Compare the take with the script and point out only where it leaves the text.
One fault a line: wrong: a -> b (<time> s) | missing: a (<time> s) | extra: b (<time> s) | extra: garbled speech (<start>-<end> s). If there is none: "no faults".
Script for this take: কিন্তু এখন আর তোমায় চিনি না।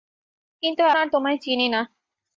missing: এখন (0.8 s)